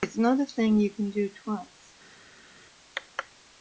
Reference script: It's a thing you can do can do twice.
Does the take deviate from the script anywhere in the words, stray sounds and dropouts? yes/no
yes